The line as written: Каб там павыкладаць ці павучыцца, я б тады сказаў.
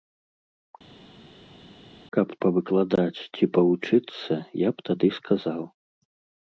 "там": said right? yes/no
no